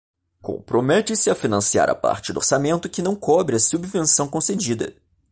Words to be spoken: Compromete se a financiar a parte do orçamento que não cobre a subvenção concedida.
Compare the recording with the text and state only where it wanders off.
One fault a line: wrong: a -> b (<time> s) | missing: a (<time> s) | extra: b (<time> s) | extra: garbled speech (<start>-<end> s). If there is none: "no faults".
no faults